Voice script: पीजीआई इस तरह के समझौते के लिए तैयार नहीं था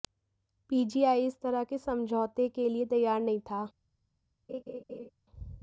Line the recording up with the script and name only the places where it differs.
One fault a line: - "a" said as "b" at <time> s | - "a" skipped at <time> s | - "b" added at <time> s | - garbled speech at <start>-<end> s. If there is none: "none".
none